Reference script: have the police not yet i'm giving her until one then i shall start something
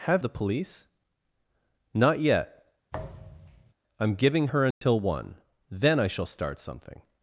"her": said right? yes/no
yes